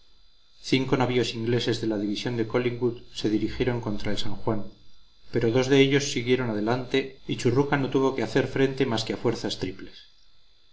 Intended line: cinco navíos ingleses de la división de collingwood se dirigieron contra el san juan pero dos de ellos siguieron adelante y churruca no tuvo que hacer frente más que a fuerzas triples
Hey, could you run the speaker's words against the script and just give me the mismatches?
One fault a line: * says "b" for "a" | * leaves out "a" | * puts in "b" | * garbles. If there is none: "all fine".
all fine